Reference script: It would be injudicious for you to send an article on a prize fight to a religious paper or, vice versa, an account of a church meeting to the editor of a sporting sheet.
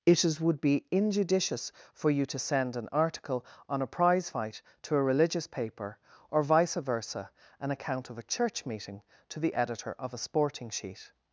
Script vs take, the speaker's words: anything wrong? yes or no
yes